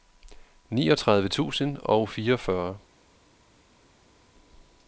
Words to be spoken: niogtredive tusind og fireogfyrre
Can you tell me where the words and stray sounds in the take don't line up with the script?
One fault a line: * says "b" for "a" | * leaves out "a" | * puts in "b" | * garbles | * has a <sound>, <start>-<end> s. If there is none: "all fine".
all fine